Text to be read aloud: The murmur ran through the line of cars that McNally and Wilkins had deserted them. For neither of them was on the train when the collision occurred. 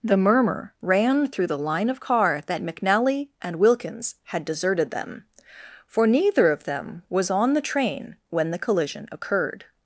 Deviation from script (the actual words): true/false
true